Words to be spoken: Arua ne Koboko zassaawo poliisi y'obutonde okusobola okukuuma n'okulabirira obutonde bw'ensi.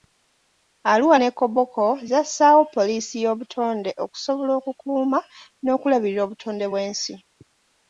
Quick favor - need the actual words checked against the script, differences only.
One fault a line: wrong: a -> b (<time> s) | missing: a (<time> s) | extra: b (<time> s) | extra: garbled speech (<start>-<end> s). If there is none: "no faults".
no faults